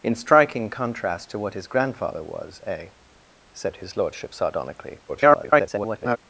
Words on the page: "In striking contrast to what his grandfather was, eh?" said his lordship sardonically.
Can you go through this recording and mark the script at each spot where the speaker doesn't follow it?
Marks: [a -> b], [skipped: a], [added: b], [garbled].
"In striking contrast to what his grandfather was, eh?" said his lordship sardonically. [garbled]